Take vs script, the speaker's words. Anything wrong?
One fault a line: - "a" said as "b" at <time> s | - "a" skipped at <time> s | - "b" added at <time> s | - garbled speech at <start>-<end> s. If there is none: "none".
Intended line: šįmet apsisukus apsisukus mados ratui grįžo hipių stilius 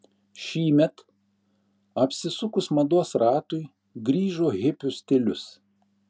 - "apsisukus" skipped at 2.7 s